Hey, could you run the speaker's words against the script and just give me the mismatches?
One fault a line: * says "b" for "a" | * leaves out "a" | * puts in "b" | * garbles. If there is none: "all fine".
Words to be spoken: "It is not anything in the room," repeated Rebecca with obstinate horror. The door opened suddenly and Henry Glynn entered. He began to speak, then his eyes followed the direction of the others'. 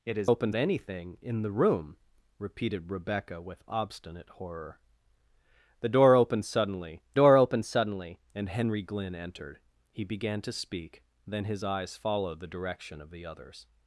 * says "opened" for "not"
* puts in "door opened suddenly"